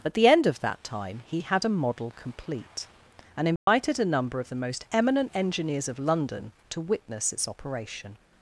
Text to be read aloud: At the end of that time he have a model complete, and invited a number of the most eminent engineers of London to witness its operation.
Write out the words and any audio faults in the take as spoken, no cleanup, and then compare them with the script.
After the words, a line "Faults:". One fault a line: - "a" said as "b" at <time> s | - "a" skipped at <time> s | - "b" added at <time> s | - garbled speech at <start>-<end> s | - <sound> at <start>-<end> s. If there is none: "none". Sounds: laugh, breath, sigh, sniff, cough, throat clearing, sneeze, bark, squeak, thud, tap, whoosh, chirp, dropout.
At the end of that time he had a model complete, and invited a number of the most eminent engineers of London to witness its operation.
Faults:
- "have" said as "had" at 1.4 s
- dropout at 3.6-3.7 s